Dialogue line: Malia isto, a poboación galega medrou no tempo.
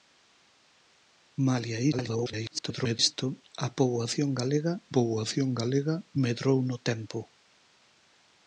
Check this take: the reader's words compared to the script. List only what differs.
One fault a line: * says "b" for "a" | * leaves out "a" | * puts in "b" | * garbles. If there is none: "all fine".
* garbles
* puts in "poboación galega"